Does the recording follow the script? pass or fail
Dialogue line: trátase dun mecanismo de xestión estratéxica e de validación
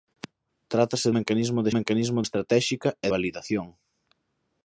fail